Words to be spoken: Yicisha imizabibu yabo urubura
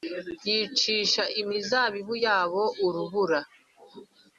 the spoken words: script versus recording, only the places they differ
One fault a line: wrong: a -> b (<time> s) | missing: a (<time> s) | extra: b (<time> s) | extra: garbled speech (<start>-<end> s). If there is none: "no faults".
no faults